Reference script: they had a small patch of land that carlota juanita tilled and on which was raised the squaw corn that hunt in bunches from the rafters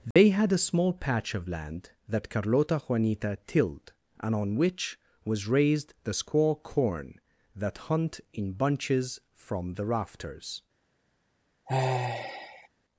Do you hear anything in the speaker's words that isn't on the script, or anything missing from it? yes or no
no